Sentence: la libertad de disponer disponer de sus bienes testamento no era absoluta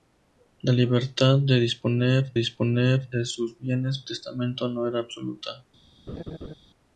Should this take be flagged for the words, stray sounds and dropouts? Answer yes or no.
yes